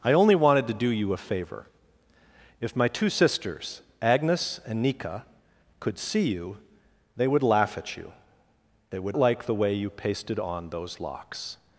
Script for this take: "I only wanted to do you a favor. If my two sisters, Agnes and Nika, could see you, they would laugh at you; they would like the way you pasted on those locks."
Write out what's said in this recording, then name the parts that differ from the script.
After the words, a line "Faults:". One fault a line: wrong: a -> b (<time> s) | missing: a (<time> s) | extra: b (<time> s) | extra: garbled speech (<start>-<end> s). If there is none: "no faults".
"I only wanted to do you a favor. If my two sisters, Agnes and Nika, could see you, they would laugh at you; they would like the way you pasted on those locks."
Faults:
no faults